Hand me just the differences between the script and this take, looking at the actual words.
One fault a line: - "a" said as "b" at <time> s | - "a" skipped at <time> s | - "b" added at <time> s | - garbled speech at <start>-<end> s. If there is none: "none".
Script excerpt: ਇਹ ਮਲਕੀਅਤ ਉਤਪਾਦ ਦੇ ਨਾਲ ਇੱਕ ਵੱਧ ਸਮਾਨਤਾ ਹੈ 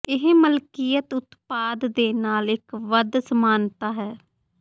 none